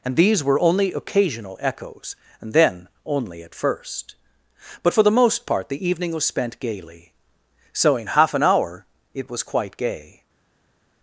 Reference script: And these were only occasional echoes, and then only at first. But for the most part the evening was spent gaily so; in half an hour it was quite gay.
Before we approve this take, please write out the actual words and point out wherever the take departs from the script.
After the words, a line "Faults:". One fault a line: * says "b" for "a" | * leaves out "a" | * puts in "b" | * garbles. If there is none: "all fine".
And these were only occasional echoes, and then only at first. But for the most part the evening was spent gaily so; in half an hour it was quite gay.
Faults:
all fine